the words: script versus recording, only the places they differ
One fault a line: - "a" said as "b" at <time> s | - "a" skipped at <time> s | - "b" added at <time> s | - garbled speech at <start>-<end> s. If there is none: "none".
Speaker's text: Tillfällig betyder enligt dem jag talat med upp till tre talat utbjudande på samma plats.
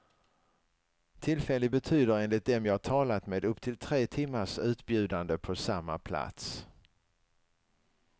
- "talat" said as "timmars" at 4.0 s